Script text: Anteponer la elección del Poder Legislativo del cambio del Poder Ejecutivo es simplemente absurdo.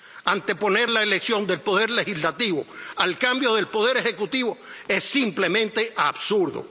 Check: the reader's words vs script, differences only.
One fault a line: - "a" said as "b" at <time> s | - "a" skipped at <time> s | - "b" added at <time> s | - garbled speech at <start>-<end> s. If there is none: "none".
- "del" said as "al" at 3.0 s